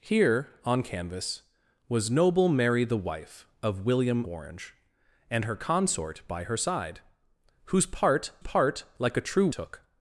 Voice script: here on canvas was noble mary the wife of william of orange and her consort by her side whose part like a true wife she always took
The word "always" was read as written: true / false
false